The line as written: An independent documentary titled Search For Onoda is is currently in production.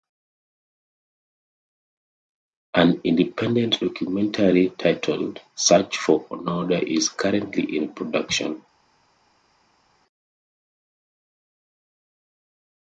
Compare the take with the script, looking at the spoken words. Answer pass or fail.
fail